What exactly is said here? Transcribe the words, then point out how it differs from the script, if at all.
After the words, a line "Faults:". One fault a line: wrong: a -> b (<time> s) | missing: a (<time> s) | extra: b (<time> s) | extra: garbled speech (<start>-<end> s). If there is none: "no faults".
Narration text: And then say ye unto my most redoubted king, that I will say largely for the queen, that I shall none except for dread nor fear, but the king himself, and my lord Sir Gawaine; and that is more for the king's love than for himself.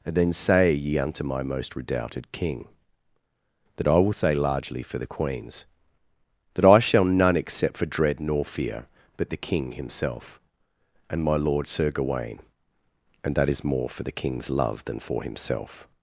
And then say ye unto my most redoubted king, that I will say largely for the queens, that I shall none except for dread nor fear, but the king himself, and my lord Sir Gawaine; and that is more for the king's love than for himself.
Faults:
wrong: queen -> queens (5.1 s)